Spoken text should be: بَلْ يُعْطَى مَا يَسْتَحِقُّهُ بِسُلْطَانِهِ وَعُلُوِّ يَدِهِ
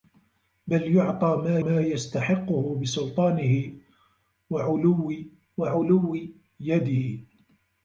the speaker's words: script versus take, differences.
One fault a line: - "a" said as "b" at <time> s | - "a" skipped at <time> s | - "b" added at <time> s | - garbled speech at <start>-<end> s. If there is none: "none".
- "مَا" added at 1.6 s
- "وَعُلُوِّ" added at 5.6 s